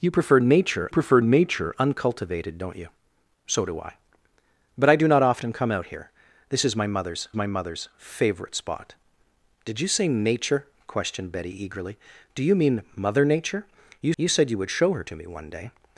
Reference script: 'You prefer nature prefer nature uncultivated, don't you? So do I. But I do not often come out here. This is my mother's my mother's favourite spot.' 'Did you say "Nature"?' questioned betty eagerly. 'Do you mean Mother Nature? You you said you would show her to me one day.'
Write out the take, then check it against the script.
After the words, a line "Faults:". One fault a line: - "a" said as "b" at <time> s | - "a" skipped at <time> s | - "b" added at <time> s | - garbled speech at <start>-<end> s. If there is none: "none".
'You prefer nature prefer nature uncultivated, don't you? So do I. But I do not often come out here. This is my mother's my mother's favourite spot.' 'Did you say "Nature"?' questioned betty eagerly. 'Do you mean Mother Nature? You you said you would show her to me one day.'
Faults:
none